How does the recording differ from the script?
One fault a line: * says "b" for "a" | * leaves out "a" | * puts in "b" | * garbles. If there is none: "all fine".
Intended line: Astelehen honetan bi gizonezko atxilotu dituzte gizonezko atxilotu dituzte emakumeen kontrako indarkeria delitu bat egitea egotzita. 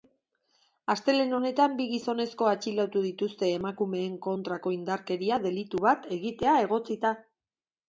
* leaves out "gizonezko atxilotu dituzte"